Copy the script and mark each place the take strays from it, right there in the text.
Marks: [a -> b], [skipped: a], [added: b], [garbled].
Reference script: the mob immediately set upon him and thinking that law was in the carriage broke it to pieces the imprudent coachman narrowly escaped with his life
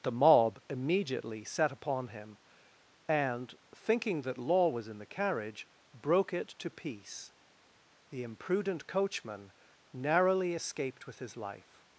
the mob immediately set upon him and thinking that law was in the carriage broke it to [pieces -> piece] the imprudent coachman narrowly escaped with his life